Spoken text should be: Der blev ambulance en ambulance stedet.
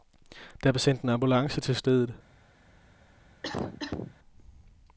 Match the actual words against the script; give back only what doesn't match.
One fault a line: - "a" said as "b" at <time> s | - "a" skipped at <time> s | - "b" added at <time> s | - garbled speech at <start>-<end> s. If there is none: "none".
- "ambulance" said as "sendt" at 0.8 s
- "til" added at 1.6 s